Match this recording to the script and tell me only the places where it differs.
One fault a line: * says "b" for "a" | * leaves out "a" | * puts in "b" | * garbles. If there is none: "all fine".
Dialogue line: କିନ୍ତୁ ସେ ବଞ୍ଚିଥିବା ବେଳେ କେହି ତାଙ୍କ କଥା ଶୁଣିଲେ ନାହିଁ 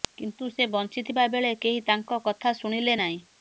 all fine